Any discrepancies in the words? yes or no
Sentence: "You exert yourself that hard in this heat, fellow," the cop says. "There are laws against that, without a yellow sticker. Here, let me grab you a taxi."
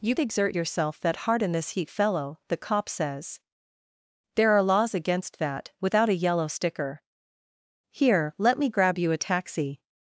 no